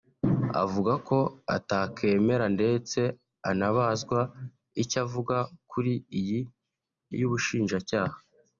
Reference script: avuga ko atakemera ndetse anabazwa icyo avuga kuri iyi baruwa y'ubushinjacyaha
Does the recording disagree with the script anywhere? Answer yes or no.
yes